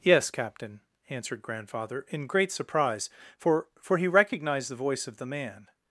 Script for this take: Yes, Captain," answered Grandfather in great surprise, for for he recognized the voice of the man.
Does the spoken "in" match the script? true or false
true